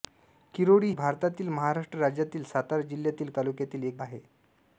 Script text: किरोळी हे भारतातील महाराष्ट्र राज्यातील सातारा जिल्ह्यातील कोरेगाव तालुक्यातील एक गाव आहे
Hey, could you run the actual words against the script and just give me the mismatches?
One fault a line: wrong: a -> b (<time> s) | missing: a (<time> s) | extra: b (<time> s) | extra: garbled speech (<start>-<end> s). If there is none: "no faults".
missing: हे (0.9 s)
missing: कोरेगाव (3.3 s)
missing: गाव (4.0 s)